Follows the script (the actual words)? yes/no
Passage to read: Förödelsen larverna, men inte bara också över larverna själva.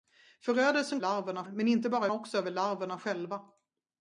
yes